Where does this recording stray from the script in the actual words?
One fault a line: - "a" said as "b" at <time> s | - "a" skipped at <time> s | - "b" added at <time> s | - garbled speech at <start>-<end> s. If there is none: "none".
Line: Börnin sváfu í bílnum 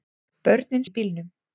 - "sváfu" skipped at 0.9 s